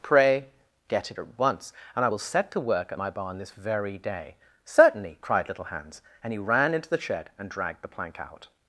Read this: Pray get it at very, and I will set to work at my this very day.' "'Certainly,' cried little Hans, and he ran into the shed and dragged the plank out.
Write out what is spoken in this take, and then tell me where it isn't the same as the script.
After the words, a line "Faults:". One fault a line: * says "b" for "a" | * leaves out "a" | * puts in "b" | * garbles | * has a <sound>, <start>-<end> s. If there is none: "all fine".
Pray get it at once, and I will set to work at my barn this very day.' "'Certainly,' cried little Hans, and he ran into the shed and dragged the plank out.
Faults:
* says "once" for "very"
* puts in "barn"